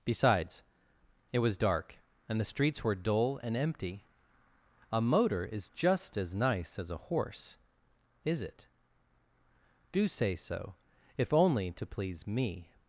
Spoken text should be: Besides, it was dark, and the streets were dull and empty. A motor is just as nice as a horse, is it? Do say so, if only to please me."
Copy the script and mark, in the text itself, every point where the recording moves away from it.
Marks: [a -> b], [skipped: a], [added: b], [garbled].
Besides, it was dark, and the streets were dull and empty. A motor is just as nice as a horse, is it? Do say so, if only to please me."